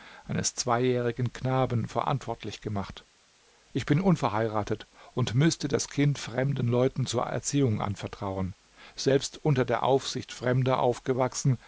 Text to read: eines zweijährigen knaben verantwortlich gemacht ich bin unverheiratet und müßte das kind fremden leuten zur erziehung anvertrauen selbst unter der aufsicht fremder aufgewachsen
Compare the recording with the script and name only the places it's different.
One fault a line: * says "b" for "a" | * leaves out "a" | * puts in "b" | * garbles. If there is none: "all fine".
all fine